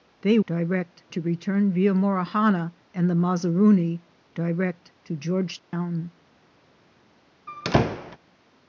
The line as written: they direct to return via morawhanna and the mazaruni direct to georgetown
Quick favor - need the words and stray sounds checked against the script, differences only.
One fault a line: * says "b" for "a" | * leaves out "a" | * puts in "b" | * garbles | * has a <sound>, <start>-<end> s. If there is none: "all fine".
* has a dropout, 5.6-5.7 s
* has a squeak, 7.5-8.2 s